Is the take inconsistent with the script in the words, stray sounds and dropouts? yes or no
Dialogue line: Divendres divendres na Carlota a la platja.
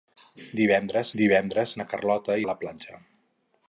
no